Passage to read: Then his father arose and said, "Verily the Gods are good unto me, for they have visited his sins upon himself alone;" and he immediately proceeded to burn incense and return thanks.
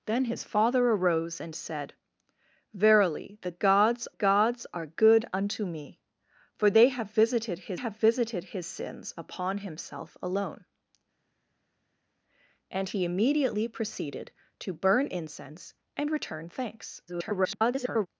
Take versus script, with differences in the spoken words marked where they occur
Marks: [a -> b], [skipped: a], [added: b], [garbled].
Then his father arose and said, "Verily the Gods [added: Gods] are good unto me, for they have visited his [added: have visited his] sins upon himself alone;" and he immediately proceeded to burn incense and return thanks. [garbled]